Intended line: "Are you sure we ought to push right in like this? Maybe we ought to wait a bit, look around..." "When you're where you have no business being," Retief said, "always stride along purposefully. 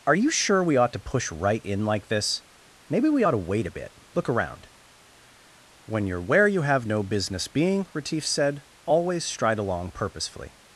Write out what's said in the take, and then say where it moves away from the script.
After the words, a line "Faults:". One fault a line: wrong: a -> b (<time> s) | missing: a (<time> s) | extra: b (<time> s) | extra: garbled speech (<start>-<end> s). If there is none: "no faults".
"Are you sure we ought to push right in like this? Maybe we ought to wait a bit, look around..." "When you're where you have no business being," Retief said, "always stride along purposefully.
Faults:
no faults